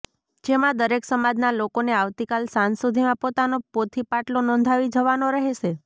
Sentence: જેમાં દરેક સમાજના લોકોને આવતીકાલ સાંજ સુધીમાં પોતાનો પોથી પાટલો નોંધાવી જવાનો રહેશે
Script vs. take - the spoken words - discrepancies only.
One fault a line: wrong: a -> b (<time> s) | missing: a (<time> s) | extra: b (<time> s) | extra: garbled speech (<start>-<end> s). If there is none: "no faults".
no faults